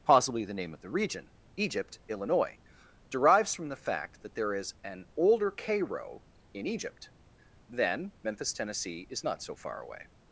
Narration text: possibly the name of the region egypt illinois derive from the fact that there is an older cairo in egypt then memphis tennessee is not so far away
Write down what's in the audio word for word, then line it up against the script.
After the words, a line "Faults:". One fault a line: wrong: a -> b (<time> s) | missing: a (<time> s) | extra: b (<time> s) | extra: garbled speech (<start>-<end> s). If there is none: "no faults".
possibly the name of the region egypt illinois derives from the fact that there is an older cairo in egypt then memphis tennessee is not so far away
Faults:
wrong: derive -> derives (3.1 s)